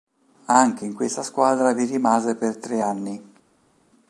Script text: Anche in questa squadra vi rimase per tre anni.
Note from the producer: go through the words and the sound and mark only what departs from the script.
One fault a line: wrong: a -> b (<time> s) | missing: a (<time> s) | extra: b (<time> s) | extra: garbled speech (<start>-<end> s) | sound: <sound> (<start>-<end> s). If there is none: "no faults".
no faults